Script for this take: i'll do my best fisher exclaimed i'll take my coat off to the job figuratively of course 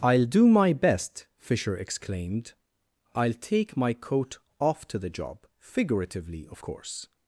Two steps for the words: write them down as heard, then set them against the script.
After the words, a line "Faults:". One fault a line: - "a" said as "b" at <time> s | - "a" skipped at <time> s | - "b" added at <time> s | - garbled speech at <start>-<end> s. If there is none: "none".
i'll do my best fisher exclaimed i'll take my coat off to the job figuratively of course
Faults:
none